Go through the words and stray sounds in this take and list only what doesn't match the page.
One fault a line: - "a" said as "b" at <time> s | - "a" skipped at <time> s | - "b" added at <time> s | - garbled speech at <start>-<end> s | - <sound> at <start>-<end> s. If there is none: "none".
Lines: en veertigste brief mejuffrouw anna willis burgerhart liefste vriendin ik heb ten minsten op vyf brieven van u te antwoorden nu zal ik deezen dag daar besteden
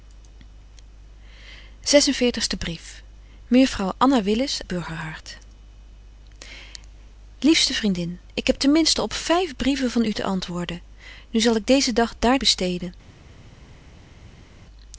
none